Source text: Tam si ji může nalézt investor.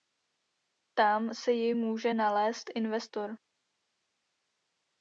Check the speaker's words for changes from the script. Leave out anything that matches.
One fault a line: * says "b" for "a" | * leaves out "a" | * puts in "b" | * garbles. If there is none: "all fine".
all fine